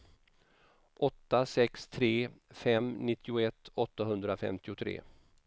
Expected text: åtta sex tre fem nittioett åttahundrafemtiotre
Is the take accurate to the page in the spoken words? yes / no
yes